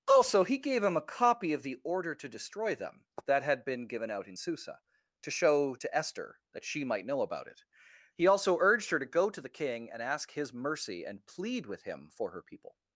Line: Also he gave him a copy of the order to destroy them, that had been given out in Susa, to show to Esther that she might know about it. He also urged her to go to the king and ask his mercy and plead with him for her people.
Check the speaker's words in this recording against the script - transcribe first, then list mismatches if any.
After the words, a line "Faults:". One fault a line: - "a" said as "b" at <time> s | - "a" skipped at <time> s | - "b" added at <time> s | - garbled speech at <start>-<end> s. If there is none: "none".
Also he gave him a copy of the order to destroy them, that had been given out in Susa, to show to Esther that she might know about it. He also urged her to go to the king and ask his mercy and plead with him for her people.
Faults:
none